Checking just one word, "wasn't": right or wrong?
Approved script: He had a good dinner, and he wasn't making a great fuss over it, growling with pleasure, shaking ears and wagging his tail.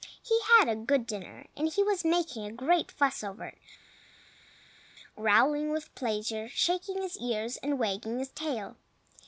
wrong